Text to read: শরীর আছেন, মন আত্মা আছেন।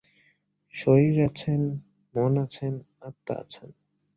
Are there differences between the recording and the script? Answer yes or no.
yes